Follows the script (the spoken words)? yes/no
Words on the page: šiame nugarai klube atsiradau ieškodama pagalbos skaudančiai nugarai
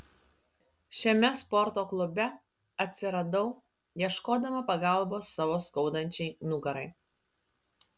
no